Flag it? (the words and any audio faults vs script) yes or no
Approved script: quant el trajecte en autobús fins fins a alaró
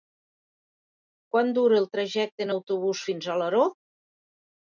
yes